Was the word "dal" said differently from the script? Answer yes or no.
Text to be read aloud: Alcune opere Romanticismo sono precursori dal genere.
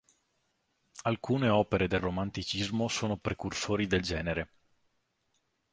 yes